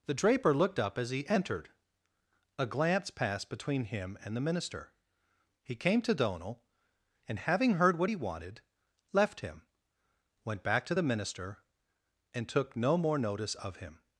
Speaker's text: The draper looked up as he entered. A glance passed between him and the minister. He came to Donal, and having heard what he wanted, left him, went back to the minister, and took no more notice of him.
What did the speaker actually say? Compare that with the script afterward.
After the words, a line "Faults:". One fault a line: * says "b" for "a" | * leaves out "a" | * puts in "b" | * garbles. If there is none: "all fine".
The draper looked up as he entered. A glance passed between him and the minister. He came to Donal, and having heard what he wanted, left him, went back to the minister, and took no more notice of him.
Faults:
all fine